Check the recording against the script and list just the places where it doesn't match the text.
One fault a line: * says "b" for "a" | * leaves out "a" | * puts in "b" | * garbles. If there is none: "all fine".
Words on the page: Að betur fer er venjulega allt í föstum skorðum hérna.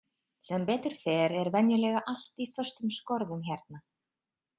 * says "Sem" for "Að"